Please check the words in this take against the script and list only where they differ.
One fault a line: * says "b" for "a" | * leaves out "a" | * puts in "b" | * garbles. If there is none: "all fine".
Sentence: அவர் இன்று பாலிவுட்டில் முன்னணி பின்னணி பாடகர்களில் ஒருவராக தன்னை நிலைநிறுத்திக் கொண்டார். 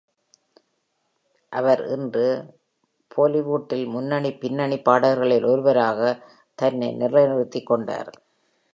all fine